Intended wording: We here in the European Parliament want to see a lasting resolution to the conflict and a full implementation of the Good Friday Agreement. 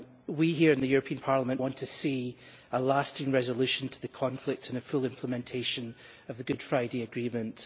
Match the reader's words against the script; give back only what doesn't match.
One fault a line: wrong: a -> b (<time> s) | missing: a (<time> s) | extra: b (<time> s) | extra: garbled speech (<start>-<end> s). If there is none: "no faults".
no faults